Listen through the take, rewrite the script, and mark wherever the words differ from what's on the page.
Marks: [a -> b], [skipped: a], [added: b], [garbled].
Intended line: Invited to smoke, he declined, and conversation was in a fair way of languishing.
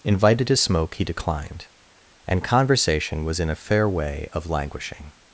Invited to smoke, he declined, and conversation was in a fair way of languishing.